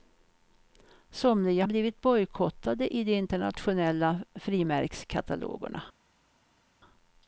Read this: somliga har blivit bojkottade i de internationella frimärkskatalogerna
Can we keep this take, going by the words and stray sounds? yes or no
no